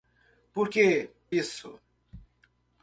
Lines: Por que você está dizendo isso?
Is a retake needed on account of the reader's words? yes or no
yes